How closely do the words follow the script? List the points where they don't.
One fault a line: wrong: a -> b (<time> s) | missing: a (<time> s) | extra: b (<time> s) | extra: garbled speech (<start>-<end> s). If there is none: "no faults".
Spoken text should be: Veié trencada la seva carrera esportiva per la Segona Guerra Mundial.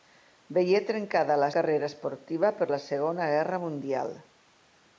missing: seva (1.5 s)